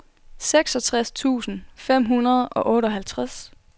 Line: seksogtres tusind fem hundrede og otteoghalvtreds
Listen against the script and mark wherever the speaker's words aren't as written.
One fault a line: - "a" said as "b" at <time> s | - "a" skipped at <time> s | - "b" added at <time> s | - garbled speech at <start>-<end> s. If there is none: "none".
none